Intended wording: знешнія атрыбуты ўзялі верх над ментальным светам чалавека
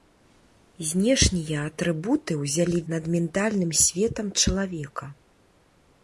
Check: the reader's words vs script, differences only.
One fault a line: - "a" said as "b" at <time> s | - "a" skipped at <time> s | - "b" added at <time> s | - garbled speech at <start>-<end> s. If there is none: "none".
- "верх" skipped at 2.8 s